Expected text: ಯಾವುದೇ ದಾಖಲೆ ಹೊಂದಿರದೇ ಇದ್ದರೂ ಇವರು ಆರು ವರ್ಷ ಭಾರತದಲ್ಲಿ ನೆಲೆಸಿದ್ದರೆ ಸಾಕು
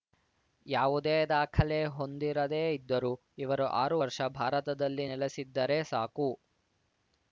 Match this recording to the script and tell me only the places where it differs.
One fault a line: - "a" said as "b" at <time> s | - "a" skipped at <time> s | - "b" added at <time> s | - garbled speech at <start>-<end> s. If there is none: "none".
none